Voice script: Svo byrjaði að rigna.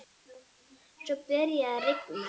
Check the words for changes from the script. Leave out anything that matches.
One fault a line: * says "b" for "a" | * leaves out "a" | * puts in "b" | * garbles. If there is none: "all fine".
all fine